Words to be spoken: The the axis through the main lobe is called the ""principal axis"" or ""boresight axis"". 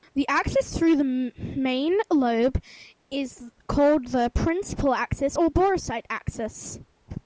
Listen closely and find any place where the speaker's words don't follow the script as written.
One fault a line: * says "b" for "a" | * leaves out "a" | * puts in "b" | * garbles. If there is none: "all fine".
* leaves out "the"